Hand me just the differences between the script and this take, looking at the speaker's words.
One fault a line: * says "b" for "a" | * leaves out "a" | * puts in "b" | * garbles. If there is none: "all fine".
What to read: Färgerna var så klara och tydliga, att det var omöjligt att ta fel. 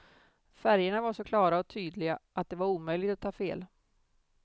all fine